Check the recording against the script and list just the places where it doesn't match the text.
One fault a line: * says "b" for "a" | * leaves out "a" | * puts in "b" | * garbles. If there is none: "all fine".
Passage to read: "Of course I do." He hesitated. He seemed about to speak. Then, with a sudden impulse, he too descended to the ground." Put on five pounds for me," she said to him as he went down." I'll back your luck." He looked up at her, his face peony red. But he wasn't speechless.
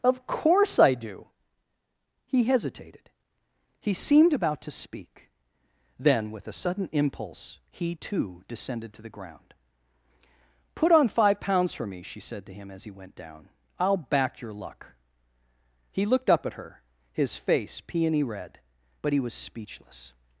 * says "was" for "wasn't"